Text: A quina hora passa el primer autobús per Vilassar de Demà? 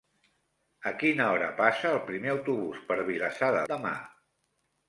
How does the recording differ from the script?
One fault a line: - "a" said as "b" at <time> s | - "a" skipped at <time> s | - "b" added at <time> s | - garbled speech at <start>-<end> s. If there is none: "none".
none